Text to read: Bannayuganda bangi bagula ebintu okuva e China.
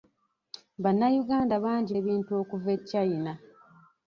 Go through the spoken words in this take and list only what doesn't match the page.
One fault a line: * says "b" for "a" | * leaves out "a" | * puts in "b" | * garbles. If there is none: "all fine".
* leaves out "bagula"